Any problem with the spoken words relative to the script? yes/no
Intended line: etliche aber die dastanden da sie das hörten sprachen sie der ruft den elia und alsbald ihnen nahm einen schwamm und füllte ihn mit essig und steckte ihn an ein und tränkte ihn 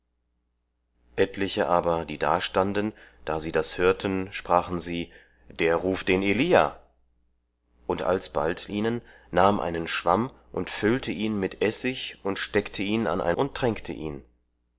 no